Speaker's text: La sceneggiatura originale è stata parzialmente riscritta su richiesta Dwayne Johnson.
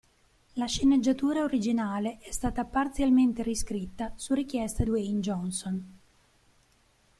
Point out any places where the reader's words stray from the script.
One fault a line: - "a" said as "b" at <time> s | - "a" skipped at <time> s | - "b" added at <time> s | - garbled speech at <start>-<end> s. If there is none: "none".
none